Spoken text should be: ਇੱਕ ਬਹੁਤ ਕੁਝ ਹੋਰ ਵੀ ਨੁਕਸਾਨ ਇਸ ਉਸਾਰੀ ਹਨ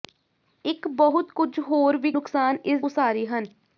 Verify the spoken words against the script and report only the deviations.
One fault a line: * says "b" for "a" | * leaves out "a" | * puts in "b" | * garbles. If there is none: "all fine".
all fine